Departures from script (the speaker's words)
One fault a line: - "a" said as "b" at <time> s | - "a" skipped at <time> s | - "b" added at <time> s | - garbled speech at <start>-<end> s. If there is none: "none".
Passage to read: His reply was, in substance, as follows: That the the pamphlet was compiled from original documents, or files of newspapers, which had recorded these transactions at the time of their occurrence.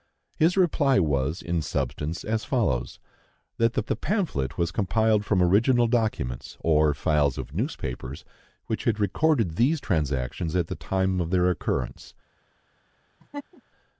none